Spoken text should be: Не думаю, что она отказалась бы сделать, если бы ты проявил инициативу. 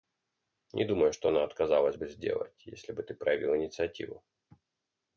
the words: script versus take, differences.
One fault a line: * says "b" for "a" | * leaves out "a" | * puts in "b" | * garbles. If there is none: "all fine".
all fine